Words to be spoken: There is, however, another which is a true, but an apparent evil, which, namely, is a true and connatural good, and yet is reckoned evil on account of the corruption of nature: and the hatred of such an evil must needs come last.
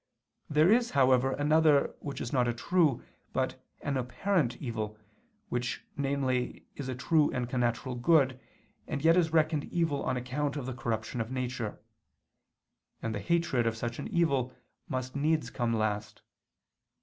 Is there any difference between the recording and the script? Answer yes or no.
yes